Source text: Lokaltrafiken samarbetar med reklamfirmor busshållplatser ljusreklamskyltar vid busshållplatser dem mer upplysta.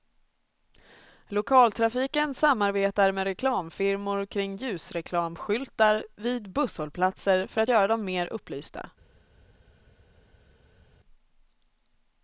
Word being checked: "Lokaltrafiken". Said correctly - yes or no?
yes